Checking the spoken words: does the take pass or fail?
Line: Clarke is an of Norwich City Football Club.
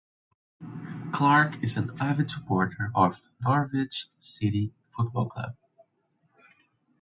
fail